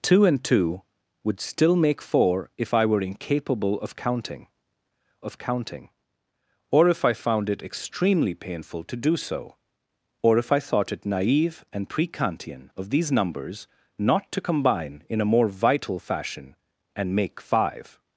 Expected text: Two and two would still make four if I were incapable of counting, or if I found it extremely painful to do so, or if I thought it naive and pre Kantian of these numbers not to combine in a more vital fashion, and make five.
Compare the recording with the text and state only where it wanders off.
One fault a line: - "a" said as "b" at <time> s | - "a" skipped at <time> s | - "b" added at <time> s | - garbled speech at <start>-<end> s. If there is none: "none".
- "of counting" added at 5.2 s